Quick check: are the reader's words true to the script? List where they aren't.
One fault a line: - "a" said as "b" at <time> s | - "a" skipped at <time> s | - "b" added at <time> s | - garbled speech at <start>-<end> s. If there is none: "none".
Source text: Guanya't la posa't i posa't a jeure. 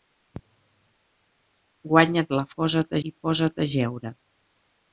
none